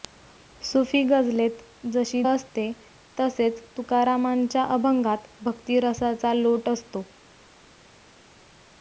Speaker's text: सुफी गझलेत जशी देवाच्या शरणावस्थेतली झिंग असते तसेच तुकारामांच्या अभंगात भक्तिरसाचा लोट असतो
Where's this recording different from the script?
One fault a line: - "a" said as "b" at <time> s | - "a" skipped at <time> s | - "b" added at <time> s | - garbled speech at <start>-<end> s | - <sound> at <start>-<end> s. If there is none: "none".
- "देवाच्या शरणावस्थेतली झिंग" skipped at 2.2 s